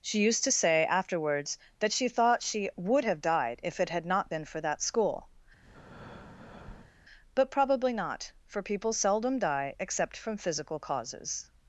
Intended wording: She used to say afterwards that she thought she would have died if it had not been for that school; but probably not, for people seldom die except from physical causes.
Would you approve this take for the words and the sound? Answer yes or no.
no